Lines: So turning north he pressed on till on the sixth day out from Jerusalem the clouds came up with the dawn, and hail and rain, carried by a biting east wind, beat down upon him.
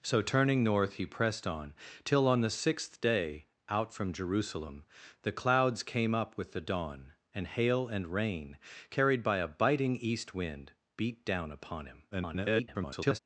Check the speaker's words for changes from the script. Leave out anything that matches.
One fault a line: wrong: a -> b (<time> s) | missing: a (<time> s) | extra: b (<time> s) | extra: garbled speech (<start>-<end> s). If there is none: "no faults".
extra: garbled speech (12.1-13.2 s)